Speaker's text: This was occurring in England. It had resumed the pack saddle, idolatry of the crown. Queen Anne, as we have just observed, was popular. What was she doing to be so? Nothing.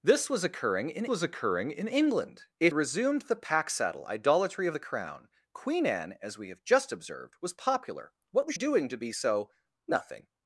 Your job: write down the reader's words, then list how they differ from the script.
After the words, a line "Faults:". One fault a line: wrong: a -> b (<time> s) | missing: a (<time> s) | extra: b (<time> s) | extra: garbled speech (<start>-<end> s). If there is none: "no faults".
This was occurring in was occurring in England. It resumed the pack saddle, idolatry of the crown. Queen Anne, as we have just observed, was popular. What was doing to be so? Nothing.
Faults:
extra: was occurring in (1.1 s)
missing: had (2.7 s)
missing: she (8.6 s)